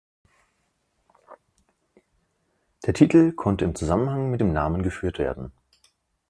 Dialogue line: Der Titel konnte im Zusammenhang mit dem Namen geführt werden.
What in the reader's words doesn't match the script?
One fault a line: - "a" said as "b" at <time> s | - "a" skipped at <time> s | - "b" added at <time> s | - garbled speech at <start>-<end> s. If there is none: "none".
none